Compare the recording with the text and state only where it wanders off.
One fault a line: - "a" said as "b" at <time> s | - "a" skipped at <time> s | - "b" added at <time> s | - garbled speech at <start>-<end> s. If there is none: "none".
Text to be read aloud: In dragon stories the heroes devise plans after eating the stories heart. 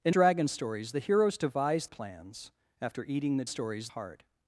none